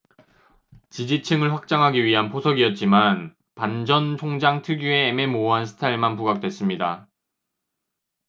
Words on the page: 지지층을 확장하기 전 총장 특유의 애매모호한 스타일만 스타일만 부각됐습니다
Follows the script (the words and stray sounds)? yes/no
no